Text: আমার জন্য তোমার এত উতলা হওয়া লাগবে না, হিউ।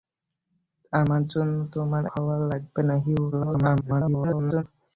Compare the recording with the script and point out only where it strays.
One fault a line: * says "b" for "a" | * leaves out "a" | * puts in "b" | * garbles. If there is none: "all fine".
* leaves out "এত উতলা"
* garbles